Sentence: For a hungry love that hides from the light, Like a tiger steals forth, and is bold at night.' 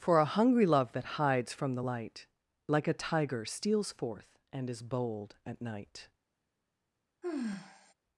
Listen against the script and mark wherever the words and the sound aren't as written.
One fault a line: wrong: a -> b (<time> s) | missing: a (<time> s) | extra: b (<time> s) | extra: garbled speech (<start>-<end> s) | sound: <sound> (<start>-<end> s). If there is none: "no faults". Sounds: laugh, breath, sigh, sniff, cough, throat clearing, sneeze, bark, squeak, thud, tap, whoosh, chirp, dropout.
sound: sigh (7.2-7.9 s)